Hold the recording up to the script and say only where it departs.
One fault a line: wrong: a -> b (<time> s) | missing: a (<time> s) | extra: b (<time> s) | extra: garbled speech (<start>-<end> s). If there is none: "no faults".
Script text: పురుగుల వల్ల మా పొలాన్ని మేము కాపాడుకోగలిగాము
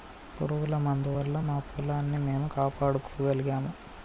extra: మందు (0.8 s)